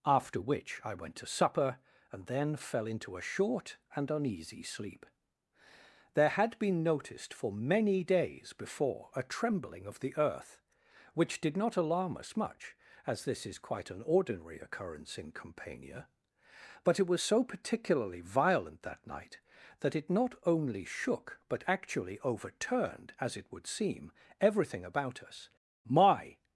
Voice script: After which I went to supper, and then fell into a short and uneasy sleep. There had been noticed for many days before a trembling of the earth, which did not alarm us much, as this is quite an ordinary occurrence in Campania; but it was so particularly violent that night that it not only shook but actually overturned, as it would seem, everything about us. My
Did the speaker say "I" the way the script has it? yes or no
yes